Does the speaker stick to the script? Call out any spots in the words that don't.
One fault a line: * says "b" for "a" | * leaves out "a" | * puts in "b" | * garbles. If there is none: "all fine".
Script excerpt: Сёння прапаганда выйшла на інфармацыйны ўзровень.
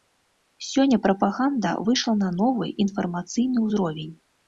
* puts in "новы"